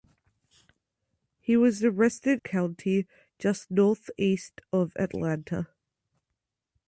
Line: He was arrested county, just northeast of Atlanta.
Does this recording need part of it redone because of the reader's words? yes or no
no